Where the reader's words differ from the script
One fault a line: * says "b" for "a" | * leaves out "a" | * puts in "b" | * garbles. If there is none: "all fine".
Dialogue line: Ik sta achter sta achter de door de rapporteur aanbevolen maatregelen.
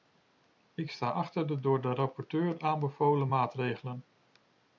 * leaves out "sta achter"